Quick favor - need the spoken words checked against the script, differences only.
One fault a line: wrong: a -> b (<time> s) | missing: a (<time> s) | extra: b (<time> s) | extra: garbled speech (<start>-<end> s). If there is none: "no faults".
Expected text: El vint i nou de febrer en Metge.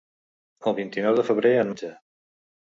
no faults